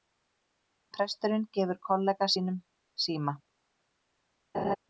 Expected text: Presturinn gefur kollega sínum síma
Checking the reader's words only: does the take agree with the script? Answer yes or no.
yes